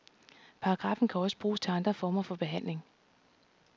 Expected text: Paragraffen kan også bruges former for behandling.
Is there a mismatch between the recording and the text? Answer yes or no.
yes